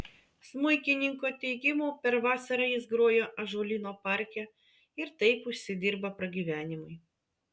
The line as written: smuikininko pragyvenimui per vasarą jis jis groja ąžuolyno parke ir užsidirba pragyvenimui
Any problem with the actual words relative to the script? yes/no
yes